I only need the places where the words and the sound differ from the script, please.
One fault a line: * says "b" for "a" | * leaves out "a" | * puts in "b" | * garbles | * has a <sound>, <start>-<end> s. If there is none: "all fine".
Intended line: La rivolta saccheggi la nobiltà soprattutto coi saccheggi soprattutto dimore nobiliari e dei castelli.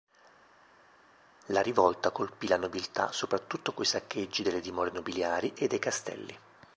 * says "colpì" for "saccheggi"
* says "delle" for "soprattutto"